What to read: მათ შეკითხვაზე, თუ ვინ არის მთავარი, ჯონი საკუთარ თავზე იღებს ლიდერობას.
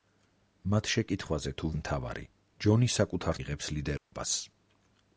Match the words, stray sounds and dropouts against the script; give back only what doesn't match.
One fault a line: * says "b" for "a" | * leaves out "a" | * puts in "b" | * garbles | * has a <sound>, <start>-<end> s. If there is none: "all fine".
* leaves out "ვინ არის"
* leaves out "თავზე"
* has a dropout, 4.0-4.1 s